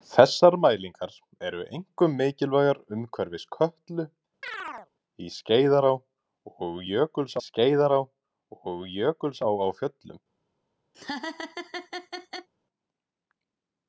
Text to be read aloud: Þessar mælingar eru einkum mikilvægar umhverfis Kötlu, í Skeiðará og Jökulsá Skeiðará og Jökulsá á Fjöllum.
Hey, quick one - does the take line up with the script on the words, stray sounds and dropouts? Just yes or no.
no